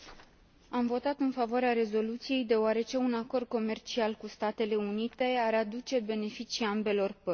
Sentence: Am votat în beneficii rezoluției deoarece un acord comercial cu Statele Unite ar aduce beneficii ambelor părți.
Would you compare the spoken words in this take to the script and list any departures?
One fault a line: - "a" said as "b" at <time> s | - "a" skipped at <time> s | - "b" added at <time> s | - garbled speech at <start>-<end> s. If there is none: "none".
- "beneficii" said as "favoarea" at 1.3 s